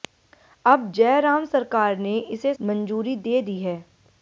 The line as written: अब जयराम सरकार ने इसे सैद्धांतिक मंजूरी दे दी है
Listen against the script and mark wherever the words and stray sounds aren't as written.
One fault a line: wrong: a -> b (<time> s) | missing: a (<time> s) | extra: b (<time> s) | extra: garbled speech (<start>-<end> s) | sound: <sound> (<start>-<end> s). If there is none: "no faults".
missing: सैद्धांतिक (2.5 s)